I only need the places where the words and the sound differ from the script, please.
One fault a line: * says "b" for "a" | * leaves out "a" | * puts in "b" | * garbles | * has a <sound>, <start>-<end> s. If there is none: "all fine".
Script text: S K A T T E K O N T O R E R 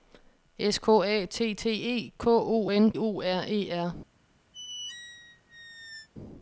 * leaves out "T"
* has a squeak, 4.5-6.1 s